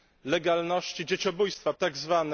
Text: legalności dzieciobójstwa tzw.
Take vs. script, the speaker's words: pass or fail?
pass